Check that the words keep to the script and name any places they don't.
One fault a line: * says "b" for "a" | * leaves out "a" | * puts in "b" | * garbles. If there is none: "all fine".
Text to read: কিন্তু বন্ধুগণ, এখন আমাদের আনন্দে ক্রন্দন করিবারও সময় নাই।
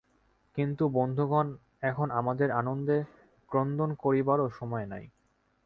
all fine